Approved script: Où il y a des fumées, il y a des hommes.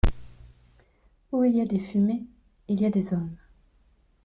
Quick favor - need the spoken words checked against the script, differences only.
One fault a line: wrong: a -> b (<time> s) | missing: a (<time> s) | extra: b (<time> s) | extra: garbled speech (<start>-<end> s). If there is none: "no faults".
no faults